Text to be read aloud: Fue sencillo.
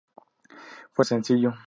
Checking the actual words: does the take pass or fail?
pass